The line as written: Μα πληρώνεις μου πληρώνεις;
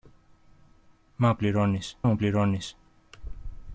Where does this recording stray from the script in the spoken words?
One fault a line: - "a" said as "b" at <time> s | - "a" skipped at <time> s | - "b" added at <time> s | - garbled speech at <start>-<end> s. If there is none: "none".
none